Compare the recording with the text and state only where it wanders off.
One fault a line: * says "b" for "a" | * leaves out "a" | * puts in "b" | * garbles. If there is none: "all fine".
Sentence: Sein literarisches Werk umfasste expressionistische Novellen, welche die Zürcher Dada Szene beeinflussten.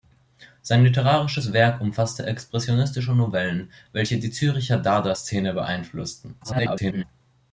* garbles